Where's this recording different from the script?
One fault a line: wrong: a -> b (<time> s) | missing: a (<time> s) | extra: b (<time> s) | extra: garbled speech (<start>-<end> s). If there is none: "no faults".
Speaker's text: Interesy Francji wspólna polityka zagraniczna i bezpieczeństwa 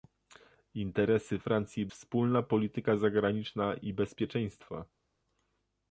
no faults